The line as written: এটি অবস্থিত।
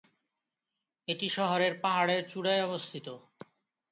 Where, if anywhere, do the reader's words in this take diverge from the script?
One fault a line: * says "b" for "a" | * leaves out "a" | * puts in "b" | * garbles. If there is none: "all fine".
* puts in "শহরের পাহাড়ের চূড়ায়"